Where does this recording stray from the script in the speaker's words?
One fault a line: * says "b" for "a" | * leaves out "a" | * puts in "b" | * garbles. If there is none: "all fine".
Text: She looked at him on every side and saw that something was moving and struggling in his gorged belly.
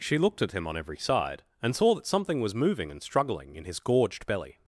all fine